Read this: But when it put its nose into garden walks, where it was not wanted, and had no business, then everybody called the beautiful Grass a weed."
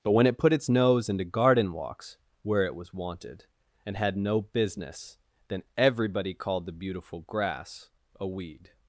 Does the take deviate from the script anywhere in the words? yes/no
yes